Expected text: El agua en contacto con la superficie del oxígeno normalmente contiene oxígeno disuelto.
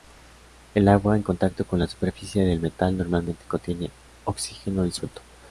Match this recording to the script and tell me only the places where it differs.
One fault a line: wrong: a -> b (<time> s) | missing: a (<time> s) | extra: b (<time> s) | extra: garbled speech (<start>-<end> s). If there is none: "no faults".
wrong: oxígeno -> metal (2.6 s)